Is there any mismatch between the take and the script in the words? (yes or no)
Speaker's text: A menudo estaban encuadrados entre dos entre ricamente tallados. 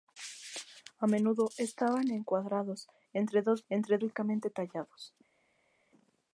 no